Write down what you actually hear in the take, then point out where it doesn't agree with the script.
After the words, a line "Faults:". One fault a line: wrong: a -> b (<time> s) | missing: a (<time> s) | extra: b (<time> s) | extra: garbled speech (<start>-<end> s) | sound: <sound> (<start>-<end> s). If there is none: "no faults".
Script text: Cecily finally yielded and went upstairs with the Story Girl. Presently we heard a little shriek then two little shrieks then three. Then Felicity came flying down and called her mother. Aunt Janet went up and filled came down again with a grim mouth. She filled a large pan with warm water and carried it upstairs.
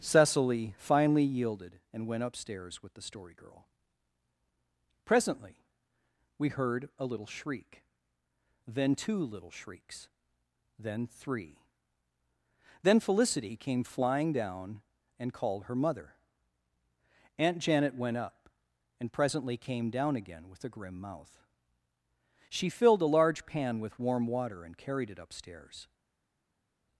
Cecily finally yielded and went upstairs with the Story Girl. Presently we heard a little shriek then two little shrieks then three. Then Felicity came flying down and called her mother. Aunt Janet went up and presently came down again with a grim mouth. She filled a large pan with warm water and carried it upstairs.
Faults:
wrong: filled -> presently (19.1 s)